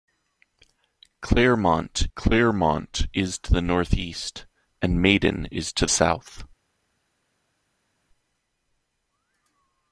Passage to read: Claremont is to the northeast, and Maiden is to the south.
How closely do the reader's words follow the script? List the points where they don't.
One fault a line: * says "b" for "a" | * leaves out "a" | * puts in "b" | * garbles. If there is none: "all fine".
* puts in "claremont"
* leaves out "the"